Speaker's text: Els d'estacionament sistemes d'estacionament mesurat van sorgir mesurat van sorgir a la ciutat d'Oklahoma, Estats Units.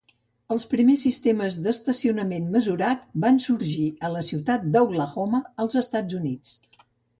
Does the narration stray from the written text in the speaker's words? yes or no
yes